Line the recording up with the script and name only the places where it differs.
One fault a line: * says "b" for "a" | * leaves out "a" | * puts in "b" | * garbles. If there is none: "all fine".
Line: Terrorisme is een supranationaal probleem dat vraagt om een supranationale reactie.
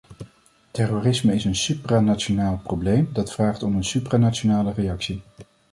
all fine